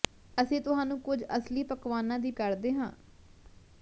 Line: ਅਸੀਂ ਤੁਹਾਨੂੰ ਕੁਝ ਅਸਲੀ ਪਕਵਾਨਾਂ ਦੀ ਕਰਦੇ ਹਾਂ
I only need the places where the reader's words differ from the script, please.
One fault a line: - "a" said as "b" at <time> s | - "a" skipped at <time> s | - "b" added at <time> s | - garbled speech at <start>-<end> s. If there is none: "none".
none